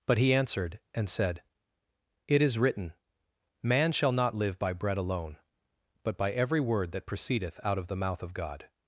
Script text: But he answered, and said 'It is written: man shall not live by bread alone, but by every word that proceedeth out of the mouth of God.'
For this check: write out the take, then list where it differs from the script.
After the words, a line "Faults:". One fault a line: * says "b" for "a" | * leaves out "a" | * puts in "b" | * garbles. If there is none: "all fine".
But he answered, and said 'It is written: man shall not live by bread alone, but by every word that proceedeth out of the mouth of God.'
Faults:
all fine